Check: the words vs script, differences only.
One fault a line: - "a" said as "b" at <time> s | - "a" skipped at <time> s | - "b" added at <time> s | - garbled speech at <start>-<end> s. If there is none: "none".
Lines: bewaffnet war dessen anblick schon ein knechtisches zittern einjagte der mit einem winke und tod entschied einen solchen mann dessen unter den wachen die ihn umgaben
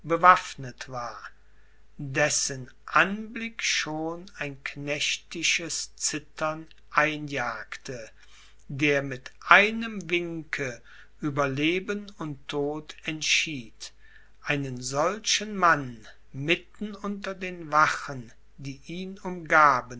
- "über leben" added at 11.2 s
- "dessen" said as "mitten" at 16.3 s